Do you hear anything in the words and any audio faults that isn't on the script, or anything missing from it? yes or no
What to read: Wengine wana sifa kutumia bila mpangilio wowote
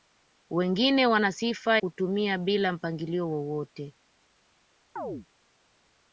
yes